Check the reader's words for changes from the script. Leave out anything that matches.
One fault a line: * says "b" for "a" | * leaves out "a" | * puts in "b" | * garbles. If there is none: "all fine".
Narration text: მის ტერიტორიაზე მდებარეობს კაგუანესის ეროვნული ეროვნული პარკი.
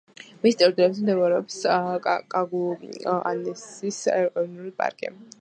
* leaves out "ეროვნული"